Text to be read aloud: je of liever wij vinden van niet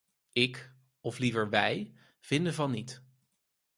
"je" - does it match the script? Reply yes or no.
no